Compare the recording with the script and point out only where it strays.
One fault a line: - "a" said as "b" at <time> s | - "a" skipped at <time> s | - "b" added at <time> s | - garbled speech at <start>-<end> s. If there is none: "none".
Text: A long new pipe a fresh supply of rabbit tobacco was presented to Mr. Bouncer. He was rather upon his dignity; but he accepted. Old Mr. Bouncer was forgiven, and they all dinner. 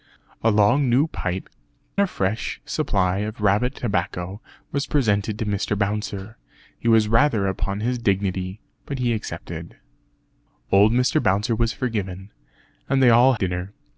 none